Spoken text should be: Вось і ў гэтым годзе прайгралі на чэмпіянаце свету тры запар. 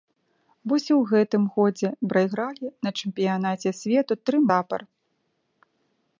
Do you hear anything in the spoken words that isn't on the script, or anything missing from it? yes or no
no